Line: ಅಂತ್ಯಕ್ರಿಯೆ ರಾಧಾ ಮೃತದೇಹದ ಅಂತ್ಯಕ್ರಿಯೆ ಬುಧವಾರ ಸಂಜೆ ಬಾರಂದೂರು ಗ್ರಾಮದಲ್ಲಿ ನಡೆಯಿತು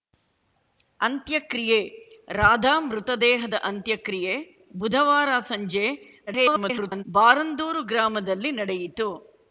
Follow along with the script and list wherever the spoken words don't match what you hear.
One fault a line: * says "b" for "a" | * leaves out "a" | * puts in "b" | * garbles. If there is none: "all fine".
* garbles